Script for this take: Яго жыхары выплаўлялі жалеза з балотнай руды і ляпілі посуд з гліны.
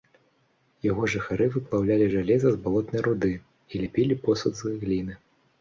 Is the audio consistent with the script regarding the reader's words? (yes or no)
yes